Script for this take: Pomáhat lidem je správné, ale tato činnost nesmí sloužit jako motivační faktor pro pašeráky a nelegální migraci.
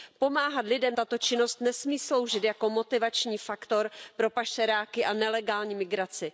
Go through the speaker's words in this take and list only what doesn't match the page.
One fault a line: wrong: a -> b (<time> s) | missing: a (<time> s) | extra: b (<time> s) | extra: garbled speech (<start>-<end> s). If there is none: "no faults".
missing: je správné ale (1.0 s)